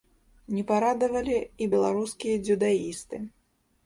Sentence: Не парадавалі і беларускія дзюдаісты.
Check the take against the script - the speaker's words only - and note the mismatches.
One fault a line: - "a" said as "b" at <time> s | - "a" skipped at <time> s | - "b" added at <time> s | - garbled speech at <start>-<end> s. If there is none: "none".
none